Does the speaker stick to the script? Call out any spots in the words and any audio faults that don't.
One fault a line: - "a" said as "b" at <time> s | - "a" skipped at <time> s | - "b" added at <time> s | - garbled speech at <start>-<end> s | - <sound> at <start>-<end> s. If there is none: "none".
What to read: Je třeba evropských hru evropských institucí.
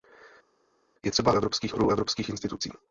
none